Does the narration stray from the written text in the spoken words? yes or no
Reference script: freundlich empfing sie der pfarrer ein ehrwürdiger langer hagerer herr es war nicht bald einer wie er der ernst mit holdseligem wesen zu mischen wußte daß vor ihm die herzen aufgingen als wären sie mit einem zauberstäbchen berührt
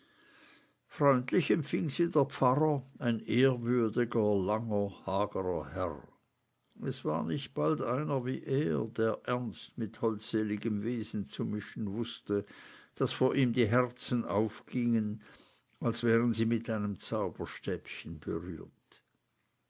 no